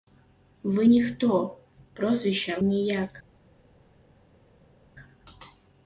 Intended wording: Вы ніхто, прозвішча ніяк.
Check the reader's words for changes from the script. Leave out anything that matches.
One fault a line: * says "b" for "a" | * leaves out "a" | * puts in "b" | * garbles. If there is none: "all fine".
all fine